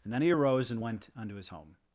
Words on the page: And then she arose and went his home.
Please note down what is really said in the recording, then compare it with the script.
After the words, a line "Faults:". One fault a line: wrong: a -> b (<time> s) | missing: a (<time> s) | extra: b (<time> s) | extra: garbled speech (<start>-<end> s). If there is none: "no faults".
And then he arose and went unto his home.
Faults:
wrong: she -> he (0.2 s)
extra: unto (1.2 s)